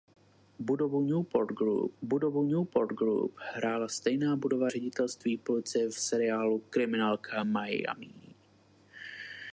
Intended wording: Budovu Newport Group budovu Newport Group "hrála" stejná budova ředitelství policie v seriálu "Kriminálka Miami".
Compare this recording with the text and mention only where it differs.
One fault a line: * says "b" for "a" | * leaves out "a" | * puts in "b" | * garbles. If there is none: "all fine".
all fine